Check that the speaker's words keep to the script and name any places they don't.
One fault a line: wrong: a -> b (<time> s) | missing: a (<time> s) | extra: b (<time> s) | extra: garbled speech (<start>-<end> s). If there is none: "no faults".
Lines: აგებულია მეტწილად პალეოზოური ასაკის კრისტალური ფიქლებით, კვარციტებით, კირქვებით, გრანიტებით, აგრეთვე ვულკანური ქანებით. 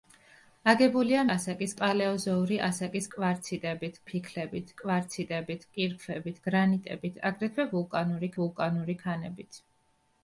wrong: მეტწილად -> ასაკის (1.3 s)
wrong: კრისტალური -> კვარციტებით (3.1 s)
extra: ვულკანური (8.4 s)